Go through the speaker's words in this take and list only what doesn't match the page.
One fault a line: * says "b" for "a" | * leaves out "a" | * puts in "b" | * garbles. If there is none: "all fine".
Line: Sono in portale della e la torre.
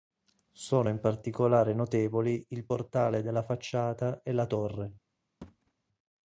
* puts in "particolare notevoli il"
* puts in "facciata"